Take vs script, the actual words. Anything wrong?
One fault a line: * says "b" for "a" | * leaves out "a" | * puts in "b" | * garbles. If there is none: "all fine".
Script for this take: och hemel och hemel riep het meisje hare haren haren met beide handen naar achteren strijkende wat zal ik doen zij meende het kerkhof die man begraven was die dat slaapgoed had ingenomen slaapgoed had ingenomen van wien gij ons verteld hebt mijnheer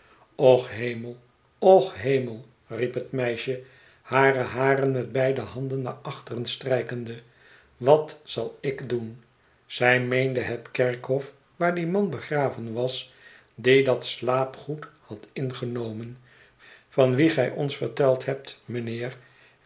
* leaves out "haren"
* puts in "waar"
* leaves out "slaapgoed had ingenomen"